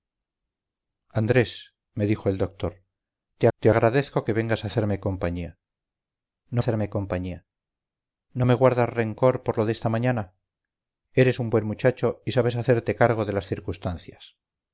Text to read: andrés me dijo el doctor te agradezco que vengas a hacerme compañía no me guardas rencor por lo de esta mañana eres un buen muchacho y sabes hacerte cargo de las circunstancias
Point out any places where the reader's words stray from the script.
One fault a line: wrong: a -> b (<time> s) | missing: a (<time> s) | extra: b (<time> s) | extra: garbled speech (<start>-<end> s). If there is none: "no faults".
extra: te (3.6 s)
extra: hacerme compañía no (6.6 s)